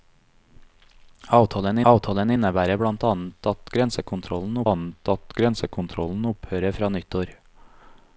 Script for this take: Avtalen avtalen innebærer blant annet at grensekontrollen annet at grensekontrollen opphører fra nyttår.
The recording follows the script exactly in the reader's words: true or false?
true